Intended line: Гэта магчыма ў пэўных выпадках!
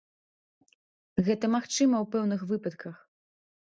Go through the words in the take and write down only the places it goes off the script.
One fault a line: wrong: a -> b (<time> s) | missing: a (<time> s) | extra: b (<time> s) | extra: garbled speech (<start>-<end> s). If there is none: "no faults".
no faults